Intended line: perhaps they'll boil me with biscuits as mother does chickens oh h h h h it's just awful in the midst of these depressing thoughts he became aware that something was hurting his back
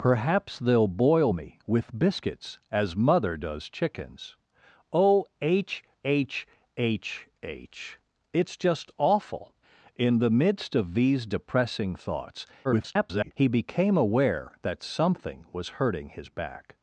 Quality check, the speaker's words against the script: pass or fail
fail